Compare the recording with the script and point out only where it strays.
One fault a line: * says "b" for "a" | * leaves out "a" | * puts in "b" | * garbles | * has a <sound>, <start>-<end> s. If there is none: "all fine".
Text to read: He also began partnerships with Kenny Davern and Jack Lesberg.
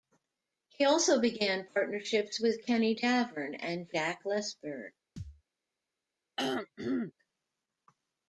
* has a thud, 5.2-5.4 s
* has a throat clearing, 6.4-7.1 s